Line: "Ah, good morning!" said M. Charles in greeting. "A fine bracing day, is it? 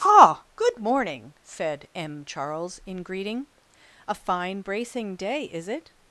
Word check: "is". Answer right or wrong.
right